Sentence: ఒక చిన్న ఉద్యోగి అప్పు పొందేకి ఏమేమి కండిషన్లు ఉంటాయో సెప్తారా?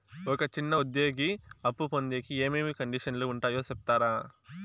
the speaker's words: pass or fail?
pass